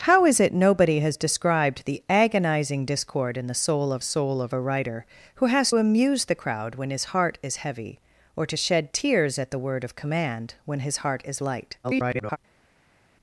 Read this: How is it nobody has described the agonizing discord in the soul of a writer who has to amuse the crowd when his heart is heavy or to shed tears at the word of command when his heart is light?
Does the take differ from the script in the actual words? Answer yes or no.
yes